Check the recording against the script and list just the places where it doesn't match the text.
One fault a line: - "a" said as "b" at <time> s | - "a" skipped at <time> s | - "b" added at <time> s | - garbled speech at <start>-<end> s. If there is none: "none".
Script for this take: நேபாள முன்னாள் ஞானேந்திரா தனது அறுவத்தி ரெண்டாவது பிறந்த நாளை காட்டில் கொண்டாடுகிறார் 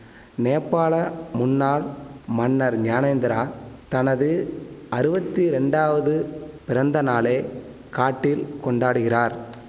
- "மன்னர்" added at 2.3 s